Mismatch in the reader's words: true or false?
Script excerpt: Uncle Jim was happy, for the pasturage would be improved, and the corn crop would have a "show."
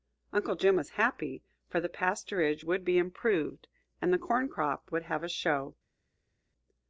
false